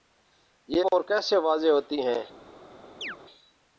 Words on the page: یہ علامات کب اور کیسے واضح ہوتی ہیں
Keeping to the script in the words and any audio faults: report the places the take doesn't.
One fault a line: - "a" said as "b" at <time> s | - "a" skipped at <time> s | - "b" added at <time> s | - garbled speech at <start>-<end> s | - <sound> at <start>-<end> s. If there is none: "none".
- "علامات کب" skipped at 0.8 s
- chirp at 3.0-3.2 s